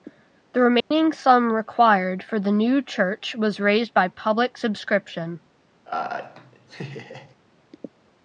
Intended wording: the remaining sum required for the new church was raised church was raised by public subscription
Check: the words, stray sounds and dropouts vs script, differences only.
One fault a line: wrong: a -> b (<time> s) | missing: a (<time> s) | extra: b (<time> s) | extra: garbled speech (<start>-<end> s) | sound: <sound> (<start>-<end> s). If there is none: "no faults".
sound: dropout (0.8-0.9 s)
missing: church was raised (3.9 s)
sound: laugh (5.9-7.4 s)